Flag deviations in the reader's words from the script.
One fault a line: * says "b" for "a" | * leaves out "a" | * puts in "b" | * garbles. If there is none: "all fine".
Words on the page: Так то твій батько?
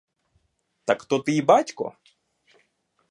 all fine